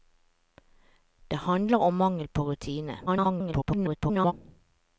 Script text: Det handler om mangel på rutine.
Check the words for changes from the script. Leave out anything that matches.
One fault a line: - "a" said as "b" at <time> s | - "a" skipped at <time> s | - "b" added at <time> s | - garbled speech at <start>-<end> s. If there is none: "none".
- garbled speech at 3.1-4.3 s